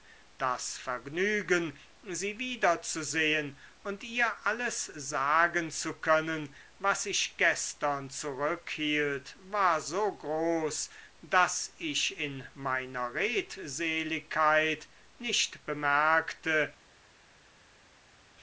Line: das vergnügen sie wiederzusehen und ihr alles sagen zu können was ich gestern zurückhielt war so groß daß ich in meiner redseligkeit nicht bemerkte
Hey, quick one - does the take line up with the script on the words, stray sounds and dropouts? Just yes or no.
yes